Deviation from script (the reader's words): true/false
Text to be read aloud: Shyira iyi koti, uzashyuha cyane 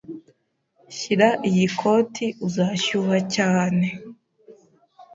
false